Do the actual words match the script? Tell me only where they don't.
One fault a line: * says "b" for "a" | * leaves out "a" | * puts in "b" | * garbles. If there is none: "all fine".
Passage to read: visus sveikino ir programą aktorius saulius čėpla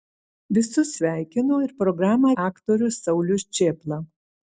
all fine